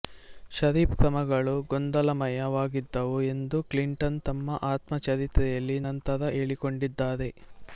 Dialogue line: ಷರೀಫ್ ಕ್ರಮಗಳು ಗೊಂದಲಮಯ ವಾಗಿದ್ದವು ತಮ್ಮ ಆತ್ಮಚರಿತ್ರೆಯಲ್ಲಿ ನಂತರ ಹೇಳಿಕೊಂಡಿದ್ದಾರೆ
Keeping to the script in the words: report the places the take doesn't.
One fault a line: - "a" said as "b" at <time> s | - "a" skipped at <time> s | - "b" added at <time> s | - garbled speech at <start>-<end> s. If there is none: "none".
- "ಎಂದು ಕ್ಲಿಂಟನ್" added at 3.3 s